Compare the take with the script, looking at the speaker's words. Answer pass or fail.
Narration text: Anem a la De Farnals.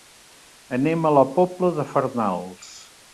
fail